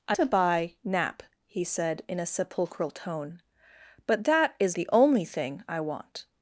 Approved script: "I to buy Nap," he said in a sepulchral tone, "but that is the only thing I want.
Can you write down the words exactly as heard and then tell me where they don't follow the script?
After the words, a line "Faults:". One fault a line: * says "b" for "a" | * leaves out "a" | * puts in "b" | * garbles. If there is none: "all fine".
"I to buy Nap," he said in a sepulchral tone, "but that is the only thing I want.
Faults:
all fine